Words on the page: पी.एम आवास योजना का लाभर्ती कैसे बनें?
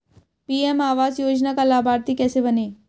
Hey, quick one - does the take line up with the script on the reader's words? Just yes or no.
yes